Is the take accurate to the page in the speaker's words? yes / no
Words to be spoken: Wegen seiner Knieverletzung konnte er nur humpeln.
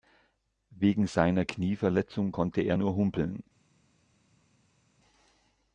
yes